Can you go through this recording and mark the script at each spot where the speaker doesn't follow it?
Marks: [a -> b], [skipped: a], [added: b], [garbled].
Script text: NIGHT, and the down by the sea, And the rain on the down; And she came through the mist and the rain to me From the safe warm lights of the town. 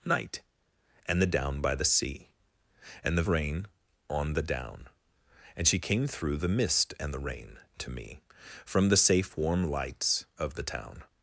NIGHT, and the down by the sea, And the rain on the down; And she came through the mist and the rain to me From the safe warm lights of the town.